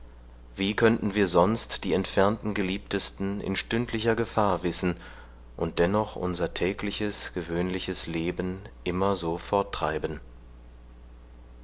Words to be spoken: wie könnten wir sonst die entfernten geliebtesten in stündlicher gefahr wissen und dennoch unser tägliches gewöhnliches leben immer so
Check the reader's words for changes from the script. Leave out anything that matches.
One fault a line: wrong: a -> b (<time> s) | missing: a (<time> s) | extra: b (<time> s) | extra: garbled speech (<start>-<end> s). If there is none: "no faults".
no faults